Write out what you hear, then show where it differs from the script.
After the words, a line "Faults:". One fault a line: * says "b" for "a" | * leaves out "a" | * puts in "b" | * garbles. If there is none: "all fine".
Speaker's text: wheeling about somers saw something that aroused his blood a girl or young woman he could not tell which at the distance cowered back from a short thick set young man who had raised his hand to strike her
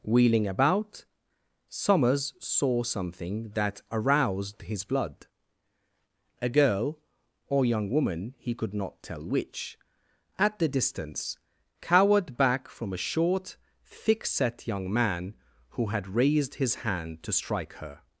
wheeling about somers saw something that aroused his blood a girl or young woman he could not tell which at the distance cowered back from a short thick set young man who had raised his hand to strike her
Faults:
all fine